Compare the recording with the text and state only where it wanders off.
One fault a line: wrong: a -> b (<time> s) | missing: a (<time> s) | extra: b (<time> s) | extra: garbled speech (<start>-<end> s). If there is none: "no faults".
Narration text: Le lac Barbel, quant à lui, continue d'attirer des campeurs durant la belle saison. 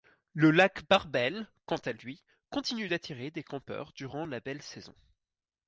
no faults